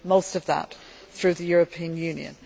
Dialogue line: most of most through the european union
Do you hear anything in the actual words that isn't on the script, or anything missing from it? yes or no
yes